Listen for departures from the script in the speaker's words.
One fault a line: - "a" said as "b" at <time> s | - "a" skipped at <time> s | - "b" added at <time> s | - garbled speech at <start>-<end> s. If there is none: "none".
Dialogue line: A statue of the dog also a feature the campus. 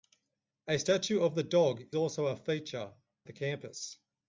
none